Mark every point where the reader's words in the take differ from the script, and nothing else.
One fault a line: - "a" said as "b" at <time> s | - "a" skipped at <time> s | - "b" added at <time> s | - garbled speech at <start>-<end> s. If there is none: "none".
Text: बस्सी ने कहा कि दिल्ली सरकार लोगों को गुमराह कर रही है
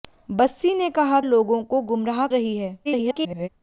- "कि दिल्ली सरकार" skipped at 1.2 s
- "कर" skipped at 2.3 s
- garbled speech at 2.8-3.5 s